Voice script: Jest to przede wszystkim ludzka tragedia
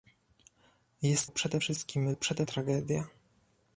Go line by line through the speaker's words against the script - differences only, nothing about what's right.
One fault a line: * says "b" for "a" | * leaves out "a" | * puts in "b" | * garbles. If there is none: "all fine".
* leaves out "to"
* says "przede" for "ludzka"